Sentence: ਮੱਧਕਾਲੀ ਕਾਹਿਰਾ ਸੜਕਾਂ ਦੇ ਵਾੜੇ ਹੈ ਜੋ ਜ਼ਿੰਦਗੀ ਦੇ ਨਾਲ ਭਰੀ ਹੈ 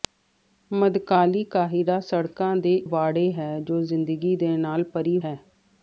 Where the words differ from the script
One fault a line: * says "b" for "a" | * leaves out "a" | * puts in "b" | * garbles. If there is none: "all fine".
all fine